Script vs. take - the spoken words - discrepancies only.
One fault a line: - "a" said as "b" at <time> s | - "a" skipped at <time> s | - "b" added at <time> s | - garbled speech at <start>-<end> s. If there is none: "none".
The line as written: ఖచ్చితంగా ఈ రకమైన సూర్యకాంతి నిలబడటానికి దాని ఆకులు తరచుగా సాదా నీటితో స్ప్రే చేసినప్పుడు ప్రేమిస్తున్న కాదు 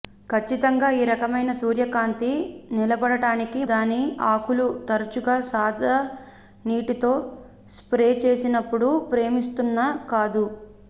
none